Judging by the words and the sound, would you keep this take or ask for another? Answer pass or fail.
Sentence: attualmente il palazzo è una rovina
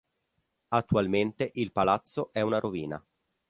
pass